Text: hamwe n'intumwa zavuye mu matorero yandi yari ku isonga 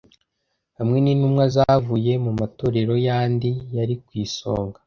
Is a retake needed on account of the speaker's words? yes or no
no